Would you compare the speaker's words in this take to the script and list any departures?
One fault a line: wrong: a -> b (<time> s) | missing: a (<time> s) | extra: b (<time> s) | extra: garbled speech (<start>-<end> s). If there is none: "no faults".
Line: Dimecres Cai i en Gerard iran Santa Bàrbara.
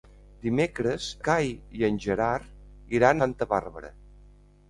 no faults